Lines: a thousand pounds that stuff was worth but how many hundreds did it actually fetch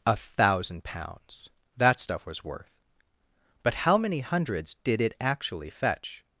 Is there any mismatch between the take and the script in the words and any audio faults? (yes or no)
no